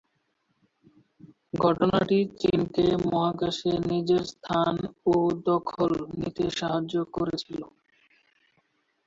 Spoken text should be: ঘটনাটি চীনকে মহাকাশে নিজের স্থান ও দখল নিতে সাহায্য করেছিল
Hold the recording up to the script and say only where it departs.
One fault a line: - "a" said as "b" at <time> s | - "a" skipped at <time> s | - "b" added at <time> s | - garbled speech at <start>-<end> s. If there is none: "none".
none